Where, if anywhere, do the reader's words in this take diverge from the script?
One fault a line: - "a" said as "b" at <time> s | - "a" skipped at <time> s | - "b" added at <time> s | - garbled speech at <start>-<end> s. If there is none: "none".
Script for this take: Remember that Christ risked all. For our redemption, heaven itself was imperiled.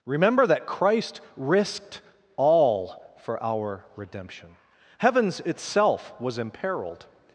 - "heaven" said as "heavens" at 5.0 s